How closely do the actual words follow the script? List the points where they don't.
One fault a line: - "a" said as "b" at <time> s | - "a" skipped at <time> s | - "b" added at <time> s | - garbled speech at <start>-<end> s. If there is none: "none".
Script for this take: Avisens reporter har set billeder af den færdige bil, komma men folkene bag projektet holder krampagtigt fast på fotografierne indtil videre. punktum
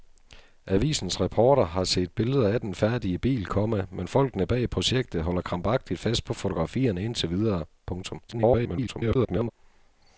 - garbled speech at 8.3-9.5 s